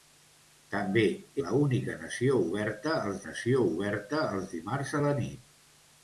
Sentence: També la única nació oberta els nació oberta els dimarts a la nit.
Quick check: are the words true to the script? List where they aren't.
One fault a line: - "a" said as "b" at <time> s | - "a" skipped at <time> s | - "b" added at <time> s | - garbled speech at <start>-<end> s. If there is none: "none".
none